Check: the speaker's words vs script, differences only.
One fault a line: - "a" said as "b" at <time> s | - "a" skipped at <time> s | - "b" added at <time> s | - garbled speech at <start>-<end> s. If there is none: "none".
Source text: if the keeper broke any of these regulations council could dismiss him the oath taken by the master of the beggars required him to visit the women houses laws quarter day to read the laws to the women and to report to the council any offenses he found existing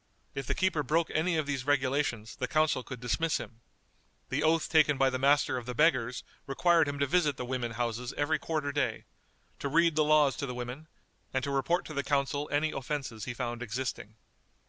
- "the" added at 2.4 s
- "laws" said as "every" at 8.2 s